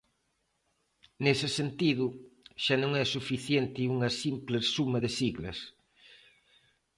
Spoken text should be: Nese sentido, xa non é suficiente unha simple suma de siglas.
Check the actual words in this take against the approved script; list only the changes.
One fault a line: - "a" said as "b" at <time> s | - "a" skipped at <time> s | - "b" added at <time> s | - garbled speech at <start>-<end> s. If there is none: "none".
none